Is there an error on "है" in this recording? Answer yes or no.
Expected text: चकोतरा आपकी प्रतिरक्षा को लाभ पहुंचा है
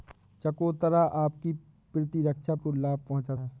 no